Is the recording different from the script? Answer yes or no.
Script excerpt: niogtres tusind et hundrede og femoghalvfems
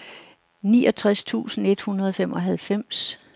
no